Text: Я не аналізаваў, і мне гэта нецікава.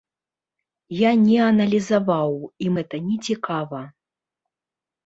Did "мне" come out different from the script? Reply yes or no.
yes